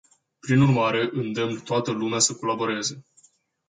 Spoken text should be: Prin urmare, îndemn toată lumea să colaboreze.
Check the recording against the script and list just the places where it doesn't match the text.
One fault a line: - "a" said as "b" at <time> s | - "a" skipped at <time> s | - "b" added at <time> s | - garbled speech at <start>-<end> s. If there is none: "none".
none